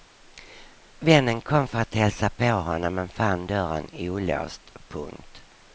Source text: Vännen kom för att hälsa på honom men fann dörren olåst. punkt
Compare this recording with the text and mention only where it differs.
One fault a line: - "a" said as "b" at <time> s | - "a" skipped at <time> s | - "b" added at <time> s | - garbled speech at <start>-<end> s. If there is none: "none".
none